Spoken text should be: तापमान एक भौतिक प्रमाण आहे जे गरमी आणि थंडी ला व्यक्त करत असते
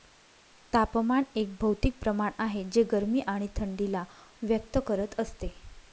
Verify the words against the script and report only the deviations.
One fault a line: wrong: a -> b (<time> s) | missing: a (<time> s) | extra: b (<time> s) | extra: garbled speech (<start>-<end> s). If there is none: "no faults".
no faults